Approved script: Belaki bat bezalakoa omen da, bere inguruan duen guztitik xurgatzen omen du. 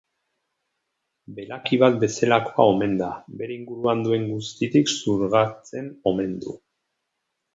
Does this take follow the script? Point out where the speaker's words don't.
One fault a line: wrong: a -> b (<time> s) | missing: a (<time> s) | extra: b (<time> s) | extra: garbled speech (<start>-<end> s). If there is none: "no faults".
no faults